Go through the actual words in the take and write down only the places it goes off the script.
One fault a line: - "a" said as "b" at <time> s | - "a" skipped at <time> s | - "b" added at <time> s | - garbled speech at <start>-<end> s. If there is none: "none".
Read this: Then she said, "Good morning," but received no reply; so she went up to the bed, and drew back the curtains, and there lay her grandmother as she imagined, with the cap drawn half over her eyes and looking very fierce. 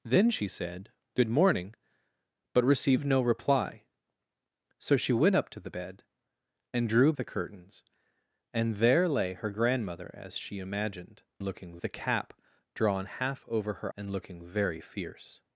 - "back" skipped at 7.1 s
- "with" said as "looking" at 11.4 s
- "eyes" skipped at 13.9 s